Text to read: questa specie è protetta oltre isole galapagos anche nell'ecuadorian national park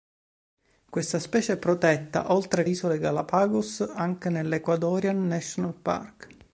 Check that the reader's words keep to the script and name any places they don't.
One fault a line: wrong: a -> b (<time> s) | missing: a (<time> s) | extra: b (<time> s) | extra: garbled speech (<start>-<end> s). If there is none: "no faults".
no faults